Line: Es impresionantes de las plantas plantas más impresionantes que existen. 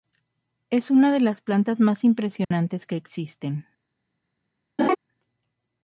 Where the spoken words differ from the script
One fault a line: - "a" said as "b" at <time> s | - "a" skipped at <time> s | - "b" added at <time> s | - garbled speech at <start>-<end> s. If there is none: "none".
- "impresionantes" said as "una" at 0.9 s
- "plantas" skipped at 1.8 s